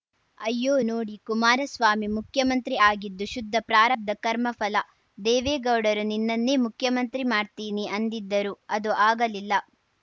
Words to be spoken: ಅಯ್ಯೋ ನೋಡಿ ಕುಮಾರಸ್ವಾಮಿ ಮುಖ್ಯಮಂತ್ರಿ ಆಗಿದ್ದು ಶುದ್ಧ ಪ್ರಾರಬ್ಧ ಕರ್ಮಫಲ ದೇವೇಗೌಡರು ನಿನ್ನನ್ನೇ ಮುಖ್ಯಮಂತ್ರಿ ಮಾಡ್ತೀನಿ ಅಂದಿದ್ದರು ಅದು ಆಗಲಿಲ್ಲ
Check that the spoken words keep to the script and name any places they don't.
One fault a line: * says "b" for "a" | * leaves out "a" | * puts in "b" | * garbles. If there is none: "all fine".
all fine